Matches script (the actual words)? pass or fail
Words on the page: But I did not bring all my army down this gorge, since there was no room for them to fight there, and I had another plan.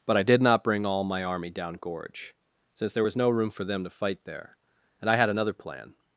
fail